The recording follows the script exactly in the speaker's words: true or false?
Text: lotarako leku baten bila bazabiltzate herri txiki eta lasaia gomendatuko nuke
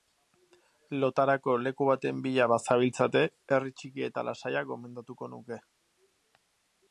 true